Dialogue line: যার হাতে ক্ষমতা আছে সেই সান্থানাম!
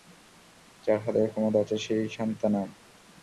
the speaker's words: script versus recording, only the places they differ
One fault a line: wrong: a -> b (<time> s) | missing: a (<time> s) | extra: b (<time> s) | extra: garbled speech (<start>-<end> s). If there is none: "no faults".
no faults